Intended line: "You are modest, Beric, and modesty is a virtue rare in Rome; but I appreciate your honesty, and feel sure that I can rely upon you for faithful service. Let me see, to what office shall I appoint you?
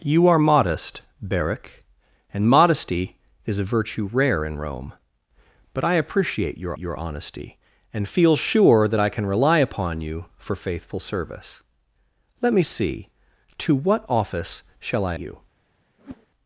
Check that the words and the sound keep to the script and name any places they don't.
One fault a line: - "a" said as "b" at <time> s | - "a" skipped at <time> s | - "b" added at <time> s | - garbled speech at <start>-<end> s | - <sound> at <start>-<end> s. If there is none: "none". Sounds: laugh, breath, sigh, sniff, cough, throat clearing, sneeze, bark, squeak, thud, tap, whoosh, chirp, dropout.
- "your" added at 6.8 s
- "appoint" skipped at 15.1 s
- whoosh at 16.0-16.3 s